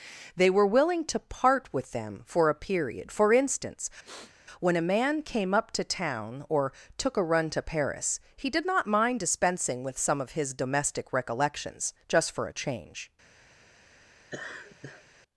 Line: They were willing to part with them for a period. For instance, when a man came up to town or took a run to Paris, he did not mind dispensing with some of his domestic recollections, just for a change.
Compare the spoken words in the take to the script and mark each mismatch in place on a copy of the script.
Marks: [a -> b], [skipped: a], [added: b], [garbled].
They were willing to part with them for a period. For instance, when a man came up to town or took a run to Paris, he did not mind dispensing with some of his domestic recollections, just for a change.